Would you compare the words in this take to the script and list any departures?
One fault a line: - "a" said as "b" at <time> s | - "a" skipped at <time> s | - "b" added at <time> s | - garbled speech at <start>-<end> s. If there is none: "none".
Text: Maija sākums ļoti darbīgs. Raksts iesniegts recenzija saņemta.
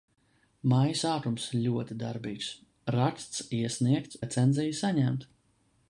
none